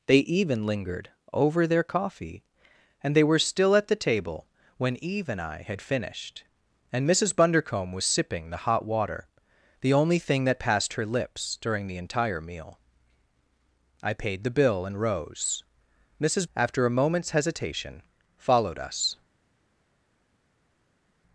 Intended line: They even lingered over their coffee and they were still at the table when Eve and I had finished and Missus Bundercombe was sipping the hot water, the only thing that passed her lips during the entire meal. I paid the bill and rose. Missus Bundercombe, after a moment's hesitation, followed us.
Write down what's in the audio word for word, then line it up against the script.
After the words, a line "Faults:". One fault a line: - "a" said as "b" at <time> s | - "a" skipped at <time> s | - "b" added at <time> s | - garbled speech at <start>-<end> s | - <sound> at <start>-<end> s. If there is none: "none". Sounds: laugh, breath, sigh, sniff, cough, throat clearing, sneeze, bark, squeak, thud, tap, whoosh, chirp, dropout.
They even lingered over their coffee and they were still at the table when Eve and I had finished and Missus Bundercombe was sipping the hot water, the only thing that passed her lips during the entire meal. I paid the bill and rose. Missus After a moment's hesitation, followed us.
Faults:
- "Bundercombe" skipped at 16.4 s